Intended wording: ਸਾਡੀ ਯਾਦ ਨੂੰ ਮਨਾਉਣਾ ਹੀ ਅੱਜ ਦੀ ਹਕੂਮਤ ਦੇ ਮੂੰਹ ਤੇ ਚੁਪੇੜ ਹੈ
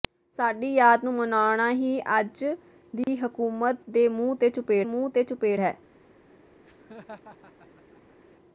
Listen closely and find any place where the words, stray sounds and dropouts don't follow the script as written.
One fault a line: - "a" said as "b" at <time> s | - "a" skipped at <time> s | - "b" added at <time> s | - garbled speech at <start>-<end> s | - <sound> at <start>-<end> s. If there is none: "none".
- dropout at 3.0-3.1 s
- "ਮੂੰਹ ਤੇ ਚੁਪੇੜ" added at 4.8 s
- laugh at 6.7-8.2 s